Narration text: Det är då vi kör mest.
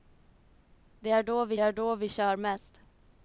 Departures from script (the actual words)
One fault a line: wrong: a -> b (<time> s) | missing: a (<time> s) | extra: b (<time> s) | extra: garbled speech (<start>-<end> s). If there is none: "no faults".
extra: är då vi (1.6 s)